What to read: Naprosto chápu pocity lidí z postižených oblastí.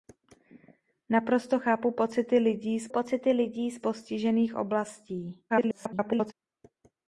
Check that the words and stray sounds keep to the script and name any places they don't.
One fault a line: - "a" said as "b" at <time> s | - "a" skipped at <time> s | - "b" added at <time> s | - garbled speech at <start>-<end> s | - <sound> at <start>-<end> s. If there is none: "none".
- "pocity lidí z" added at 2.9 s
- garbled speech at 5.5-6.3 s